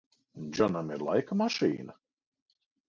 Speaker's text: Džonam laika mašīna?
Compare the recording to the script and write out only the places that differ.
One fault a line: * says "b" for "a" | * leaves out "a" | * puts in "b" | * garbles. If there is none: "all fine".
* puts in "ir"